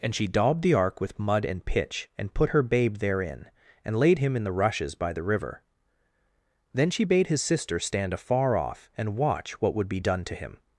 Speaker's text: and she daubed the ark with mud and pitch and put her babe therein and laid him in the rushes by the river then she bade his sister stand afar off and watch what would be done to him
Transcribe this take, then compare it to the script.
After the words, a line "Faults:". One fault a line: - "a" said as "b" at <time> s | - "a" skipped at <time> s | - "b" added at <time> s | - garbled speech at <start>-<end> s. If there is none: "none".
and she daubed the ark with mud and pitch and put her babe therein and laid him in the rushes by the river then she bade his sister stand afar off and watch what would be done to him
Faults:
none